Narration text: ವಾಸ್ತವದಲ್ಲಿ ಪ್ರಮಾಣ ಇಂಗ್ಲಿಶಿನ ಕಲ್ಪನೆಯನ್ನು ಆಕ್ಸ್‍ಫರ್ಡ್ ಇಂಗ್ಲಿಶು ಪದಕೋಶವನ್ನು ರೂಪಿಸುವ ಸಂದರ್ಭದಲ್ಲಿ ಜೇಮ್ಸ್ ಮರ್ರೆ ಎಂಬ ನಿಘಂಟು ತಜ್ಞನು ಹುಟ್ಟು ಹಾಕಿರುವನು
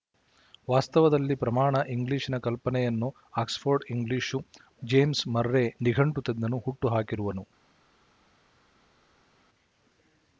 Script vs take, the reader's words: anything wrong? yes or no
yes